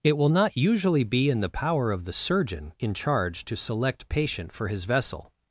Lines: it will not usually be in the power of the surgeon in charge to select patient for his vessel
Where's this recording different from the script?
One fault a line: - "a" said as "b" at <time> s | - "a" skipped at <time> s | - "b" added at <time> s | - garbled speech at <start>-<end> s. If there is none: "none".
none